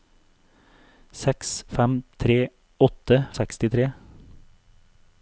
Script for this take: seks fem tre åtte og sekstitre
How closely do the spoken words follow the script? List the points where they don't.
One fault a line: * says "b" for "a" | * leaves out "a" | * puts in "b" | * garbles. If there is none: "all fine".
all fine